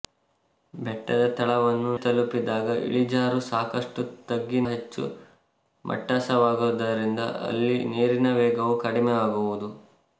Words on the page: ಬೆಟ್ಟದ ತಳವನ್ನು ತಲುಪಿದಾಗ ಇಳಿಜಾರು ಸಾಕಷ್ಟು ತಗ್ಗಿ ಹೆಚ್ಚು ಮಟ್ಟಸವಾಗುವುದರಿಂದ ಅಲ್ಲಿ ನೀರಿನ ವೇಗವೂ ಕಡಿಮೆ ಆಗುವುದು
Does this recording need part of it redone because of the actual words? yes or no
no